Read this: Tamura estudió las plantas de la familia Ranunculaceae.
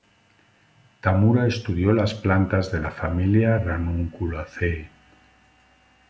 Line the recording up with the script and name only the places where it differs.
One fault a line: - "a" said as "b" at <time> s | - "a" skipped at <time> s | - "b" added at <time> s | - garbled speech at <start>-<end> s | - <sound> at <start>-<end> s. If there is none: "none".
none